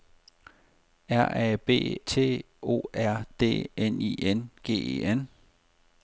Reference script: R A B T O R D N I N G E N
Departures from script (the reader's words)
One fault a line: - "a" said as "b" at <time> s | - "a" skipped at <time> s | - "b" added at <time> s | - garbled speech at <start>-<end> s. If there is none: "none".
none